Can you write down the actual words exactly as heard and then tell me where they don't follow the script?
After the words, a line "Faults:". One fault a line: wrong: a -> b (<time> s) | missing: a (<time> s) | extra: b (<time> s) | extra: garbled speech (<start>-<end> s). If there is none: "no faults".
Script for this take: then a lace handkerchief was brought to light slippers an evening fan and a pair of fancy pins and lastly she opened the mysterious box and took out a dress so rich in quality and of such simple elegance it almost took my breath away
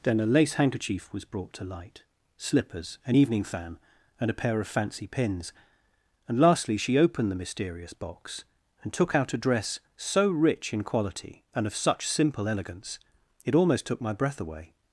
then a lace handkerchief was brought to light slippers an evening fan and a pair of fancy pins and lastly she opened the mysterious box and took out a dress so rich in quality and of such simple elegance it almost took my breath away
Faults:
no faults